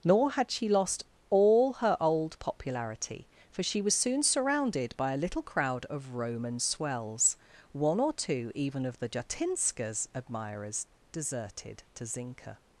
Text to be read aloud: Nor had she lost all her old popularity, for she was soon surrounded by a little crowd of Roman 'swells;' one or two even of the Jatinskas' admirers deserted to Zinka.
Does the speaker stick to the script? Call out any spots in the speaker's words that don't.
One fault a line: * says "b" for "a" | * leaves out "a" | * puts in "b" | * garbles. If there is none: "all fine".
all fine